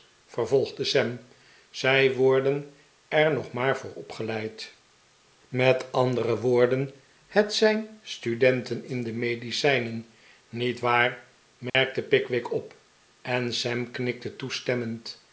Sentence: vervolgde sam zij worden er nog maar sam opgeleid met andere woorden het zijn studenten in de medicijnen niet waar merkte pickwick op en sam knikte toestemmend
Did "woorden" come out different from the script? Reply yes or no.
no